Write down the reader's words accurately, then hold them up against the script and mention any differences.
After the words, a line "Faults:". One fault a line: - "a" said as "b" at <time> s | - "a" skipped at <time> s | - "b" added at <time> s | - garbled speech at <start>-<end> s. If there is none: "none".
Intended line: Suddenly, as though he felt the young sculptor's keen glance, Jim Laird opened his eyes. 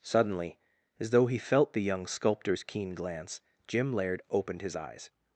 Suddenly, as though he felt the young sculptor's keen glance, Jim Laird opened his eyes.
Faults:
none